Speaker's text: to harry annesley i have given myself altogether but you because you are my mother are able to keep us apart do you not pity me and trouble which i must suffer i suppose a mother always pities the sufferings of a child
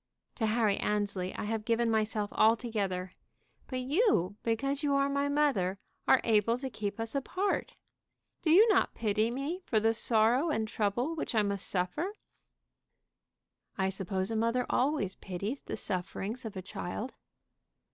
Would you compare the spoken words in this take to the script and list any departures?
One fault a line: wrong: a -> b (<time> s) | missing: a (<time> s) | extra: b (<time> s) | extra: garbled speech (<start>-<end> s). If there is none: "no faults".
extra: for the sorrow (9.7 s)